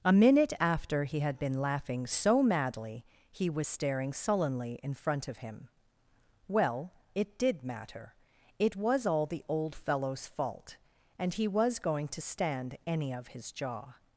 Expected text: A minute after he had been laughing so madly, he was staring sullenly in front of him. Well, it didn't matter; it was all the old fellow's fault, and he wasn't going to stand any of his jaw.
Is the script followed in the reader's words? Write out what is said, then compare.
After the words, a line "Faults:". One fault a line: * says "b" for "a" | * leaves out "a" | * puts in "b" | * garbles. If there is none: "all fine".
A minute after he had been laughing so madly, he was staring sullenly in front of him. Well, it did matter; it was all the old fellow's fault, and he was going to stand any of his jaw.
Faults:
* says "did" for "didn't"
* says "was" for "wasn't"